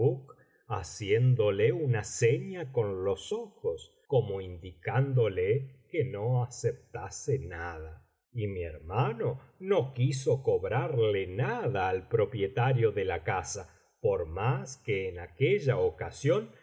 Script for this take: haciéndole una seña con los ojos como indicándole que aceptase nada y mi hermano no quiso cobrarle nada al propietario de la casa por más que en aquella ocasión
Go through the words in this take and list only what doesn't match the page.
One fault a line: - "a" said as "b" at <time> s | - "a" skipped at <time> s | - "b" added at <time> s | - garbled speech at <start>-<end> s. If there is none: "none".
- "no" added at 6.0 s